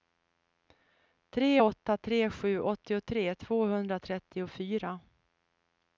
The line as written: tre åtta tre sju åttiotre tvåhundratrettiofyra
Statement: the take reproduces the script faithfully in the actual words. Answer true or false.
true